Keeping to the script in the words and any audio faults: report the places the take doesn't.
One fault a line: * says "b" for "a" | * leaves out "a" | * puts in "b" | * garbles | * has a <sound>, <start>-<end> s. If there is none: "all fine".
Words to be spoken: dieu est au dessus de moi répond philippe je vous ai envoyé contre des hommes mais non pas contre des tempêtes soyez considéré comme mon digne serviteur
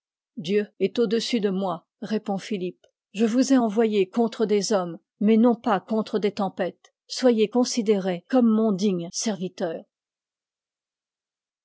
all fine